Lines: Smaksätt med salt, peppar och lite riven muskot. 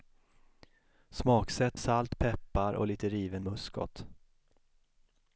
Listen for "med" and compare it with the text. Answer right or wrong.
wrong